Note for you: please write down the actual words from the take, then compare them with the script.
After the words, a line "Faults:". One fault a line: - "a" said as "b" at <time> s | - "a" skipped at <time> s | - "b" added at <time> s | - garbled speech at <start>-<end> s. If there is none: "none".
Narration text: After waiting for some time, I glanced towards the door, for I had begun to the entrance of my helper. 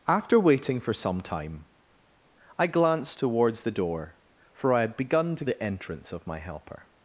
After waiting for some time, I glanced towards the door, for I had begun to the entrance of my helper.
Faults:
none